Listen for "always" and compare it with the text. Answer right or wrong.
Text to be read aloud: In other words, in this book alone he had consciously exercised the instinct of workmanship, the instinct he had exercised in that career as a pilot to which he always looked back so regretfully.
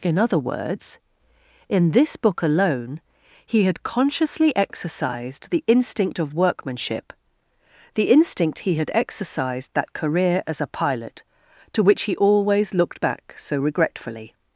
right